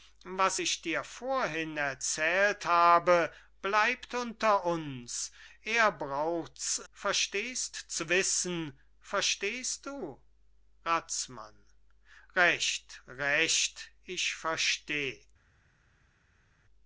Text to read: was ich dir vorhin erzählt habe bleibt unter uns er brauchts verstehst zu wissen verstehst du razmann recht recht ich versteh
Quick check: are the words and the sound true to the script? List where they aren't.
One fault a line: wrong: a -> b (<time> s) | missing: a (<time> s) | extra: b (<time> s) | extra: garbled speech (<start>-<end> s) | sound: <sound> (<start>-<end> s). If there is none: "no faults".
no faults